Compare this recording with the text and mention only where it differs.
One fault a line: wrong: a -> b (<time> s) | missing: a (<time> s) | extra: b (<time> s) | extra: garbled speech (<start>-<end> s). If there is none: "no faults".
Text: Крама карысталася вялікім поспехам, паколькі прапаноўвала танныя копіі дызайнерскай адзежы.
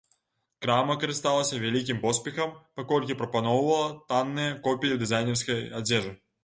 no faults